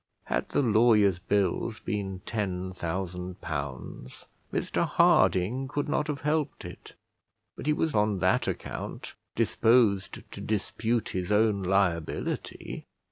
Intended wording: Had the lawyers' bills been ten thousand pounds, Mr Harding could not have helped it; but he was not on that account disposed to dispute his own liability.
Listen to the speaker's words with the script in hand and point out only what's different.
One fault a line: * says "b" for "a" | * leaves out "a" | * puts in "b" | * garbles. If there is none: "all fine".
* leaves out "not"